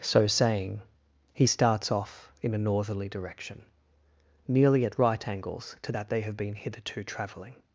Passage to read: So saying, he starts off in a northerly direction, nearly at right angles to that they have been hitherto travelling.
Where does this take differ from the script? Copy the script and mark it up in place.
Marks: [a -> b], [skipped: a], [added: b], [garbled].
So saying, he starts off in a northerly direction, nearly at right angles to that they have been hitherto travelling.